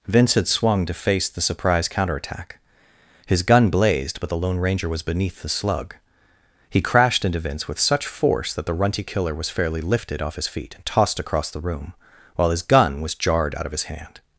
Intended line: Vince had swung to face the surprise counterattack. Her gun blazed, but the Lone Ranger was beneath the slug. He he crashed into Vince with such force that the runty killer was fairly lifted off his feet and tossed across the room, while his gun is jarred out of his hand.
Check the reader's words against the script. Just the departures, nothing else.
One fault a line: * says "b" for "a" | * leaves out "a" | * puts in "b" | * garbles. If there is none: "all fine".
* says "His" for "Her"
* leaves out "he"
* says "was" for "is"